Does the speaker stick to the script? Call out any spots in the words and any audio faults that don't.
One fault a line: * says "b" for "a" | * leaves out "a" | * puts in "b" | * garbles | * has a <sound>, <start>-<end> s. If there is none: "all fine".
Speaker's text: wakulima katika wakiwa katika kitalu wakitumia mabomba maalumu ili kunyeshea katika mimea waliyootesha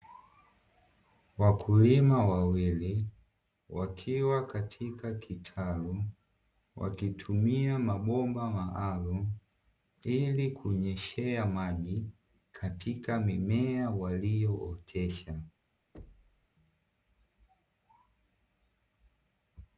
* says "wawili" for "katika"
* puts in "maji"
* has a thud, 15.9-16.5 s